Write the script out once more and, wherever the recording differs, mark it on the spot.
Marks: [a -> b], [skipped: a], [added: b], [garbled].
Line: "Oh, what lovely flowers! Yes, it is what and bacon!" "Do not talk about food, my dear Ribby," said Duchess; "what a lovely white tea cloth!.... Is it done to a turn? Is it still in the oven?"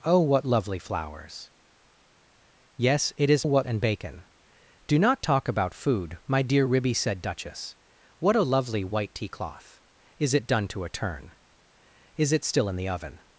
"Oh, what lovely flowers! Yes, it is what and bacon!" "Do not talk about food, my dear Ribby," said Duchess; "what a lovely white tea cloth!.... Is it done to a turn? Is it still in the oven?"